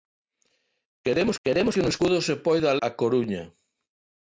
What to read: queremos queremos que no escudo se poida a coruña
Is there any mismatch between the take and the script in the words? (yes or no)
no